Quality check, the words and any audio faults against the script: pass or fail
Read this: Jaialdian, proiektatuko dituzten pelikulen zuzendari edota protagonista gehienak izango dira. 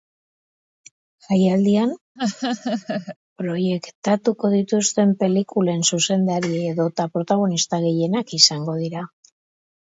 fail